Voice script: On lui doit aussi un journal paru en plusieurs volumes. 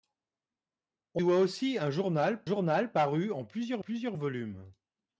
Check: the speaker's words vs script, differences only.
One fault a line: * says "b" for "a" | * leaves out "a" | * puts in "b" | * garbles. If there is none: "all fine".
* leaves out "lui"
* puts in "journal"
* puts in "plusieurs"